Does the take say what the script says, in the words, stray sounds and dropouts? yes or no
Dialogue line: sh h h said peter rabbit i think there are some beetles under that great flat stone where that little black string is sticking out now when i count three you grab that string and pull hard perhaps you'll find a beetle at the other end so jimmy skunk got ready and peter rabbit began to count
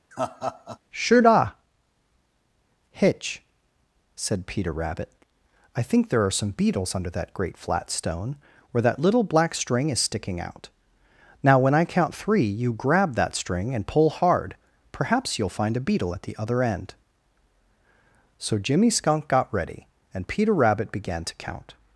no